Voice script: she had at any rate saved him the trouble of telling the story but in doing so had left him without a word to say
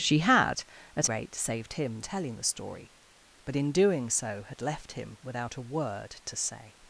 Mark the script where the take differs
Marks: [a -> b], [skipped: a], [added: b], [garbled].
she had at [skipped: any] rate saved him [skipped: the trouble of] telling the story but in doing so had left him without a word to say